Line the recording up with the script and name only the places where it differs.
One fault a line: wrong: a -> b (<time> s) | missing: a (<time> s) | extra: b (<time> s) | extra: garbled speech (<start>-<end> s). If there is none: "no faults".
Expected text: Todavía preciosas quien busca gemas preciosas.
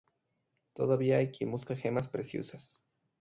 wrong: preciosas -> hay (1.2 s)